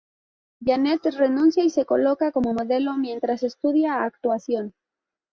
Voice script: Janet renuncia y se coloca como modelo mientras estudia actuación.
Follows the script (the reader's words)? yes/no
yes